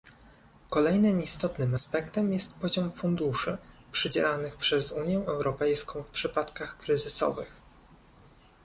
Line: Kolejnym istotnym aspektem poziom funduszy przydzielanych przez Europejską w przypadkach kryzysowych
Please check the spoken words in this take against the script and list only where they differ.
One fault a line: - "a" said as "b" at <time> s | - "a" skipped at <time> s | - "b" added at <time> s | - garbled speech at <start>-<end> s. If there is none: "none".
- "jest" added at 2.3 s
- "Unię" added at 4.9 s